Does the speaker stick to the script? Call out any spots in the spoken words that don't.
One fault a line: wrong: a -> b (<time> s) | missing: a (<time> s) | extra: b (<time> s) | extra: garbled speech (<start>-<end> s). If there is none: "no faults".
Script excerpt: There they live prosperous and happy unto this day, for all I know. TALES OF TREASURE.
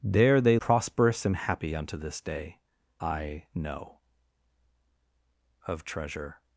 missing: live (0.6 s)
missing: for all (2.6 s)
missing: TALES (4.0 s)